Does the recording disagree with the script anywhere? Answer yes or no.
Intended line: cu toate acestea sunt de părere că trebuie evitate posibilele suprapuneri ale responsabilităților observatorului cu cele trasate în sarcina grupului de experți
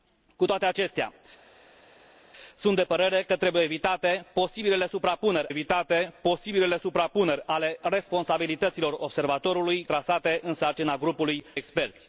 yes